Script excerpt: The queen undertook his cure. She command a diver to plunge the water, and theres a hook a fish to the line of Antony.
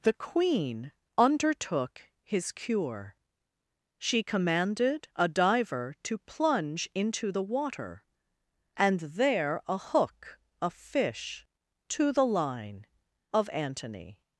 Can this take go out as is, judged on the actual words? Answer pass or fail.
fail